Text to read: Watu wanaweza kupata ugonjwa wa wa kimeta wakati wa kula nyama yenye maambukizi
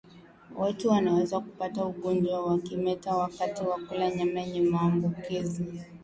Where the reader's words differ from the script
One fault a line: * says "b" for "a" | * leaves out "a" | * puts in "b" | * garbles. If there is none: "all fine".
* leaves out "wa"